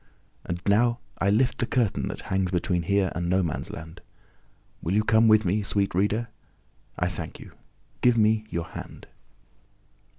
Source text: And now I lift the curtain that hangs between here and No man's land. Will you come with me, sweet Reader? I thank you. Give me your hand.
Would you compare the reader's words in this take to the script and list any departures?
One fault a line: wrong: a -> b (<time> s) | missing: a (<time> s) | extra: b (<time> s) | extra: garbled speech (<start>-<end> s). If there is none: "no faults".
no faults